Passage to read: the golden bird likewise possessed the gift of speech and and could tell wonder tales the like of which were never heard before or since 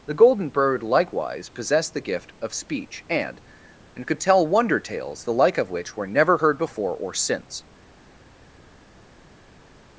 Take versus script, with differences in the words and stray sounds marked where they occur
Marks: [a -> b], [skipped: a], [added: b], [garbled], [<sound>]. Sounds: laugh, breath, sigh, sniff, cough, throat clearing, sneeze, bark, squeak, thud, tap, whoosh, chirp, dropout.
the golden bird likewise possessed the gift of speech and and could tell wonder tales the like of which were never heard before or since